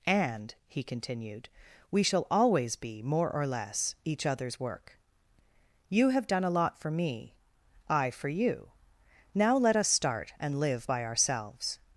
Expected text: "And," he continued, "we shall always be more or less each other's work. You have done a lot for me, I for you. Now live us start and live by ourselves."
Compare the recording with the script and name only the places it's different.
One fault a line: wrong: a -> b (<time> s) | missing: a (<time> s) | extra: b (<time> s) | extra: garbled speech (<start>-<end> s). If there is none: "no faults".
wrong: live -> let (9.6 s)